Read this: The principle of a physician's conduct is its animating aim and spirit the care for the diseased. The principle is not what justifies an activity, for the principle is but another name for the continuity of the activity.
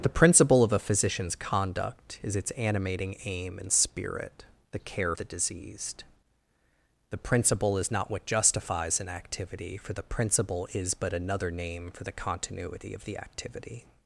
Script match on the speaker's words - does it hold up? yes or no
no